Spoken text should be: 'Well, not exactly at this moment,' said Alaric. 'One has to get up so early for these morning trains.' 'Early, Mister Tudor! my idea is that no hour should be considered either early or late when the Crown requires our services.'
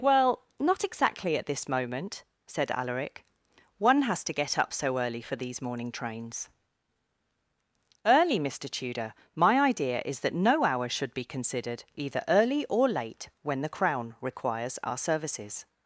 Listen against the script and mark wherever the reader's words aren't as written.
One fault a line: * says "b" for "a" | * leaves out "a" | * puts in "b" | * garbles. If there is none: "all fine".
all fine